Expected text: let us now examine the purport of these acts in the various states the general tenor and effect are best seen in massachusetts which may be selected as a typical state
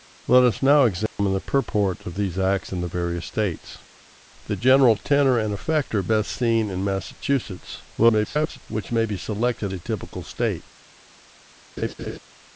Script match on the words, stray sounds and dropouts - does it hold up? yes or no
no